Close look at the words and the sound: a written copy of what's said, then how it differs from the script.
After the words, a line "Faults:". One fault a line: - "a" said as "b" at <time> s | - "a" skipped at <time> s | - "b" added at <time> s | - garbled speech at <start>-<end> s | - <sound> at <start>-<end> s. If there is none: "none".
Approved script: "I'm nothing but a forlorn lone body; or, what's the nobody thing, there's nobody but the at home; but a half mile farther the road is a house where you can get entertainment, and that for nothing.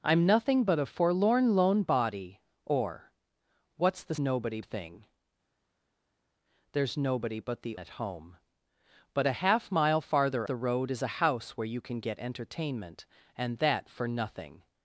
"I'm nothing but a forlorn lone body; or, what's the nobody thing, there's nobody but the at home; but a half mile farther the road is a house where you can get entertainment, and that for nothing.
Faults:
none